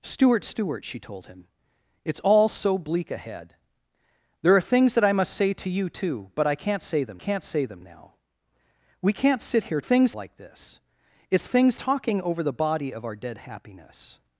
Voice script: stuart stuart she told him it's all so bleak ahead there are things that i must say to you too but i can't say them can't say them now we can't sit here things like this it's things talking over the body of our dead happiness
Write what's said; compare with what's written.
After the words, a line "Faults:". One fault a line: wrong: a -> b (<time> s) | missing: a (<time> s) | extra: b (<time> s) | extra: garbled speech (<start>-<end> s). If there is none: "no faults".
stuart stuart she told him it's all so bleak ahead there are things that i must say to you too but i can't say them can't say them now we can't sit here things like this it's things talking over the body of our dead happiness
Faults:
no faults